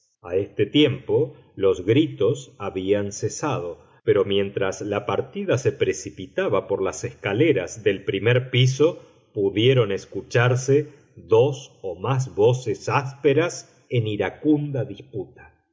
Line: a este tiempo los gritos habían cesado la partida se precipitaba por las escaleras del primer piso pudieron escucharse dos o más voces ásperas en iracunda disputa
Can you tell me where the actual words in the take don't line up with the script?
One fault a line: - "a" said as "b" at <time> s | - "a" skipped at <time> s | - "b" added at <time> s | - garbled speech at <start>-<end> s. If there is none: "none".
- "pero mientras" added at 4.0 s